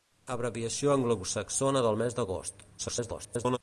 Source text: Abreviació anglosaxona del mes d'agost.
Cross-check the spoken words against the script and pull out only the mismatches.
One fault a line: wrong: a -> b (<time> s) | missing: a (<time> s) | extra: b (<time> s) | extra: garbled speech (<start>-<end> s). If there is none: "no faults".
extra: garbled speech (2.8-3.6 s)